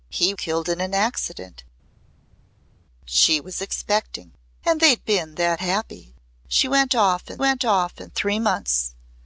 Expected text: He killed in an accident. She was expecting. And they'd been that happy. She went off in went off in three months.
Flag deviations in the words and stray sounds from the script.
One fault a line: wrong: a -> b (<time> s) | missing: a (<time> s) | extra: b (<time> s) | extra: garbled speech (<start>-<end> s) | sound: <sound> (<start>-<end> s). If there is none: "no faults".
no faults